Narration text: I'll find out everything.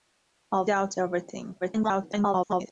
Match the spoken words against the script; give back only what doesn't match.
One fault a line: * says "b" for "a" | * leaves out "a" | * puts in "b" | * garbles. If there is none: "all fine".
* leaves out "find"
* garbles